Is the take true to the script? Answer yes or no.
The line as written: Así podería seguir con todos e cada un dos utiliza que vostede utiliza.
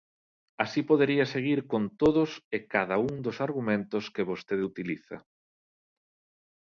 no